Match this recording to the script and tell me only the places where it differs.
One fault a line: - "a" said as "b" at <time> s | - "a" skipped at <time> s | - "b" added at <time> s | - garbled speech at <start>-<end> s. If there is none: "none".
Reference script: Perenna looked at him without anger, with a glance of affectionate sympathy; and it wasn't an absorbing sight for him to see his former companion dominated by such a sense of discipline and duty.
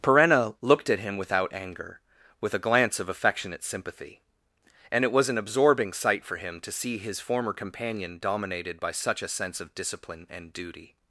- "wasn't" said as "was" at 5.1 s